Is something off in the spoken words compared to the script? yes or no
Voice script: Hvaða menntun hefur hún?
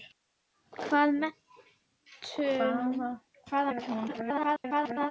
yes